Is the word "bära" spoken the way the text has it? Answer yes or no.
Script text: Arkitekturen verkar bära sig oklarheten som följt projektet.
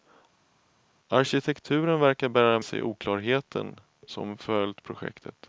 yes